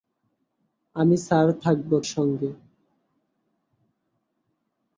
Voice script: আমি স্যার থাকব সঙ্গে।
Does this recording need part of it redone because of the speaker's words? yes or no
no